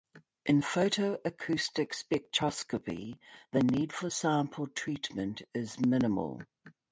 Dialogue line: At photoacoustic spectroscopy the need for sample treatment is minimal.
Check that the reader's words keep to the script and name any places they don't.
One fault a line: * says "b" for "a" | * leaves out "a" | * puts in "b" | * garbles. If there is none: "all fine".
* says "In" for "At"